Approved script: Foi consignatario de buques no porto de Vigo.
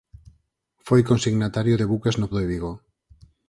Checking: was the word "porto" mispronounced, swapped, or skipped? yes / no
yes